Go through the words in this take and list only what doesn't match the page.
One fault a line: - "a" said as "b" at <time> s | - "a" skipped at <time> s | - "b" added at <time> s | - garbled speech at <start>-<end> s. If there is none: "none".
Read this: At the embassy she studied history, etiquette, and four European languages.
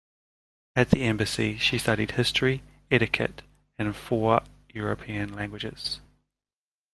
none